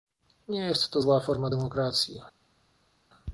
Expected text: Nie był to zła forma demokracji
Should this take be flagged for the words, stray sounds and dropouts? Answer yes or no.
yes